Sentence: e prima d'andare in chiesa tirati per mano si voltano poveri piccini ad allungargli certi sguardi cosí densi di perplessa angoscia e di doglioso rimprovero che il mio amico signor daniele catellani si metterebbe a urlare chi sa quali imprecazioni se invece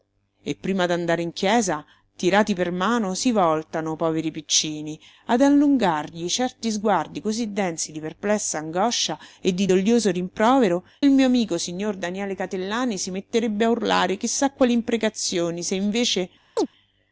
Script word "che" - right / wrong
wrong